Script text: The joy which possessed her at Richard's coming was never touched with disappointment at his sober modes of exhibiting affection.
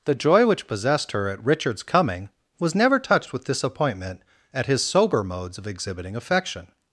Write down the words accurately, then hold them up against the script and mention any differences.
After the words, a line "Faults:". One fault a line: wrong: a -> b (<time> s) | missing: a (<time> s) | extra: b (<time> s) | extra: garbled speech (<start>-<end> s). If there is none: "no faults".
The joy which possessed her at Richard's coming was never touched with disappointment at his sober modes of exhibiting affection.
Faults:
no faults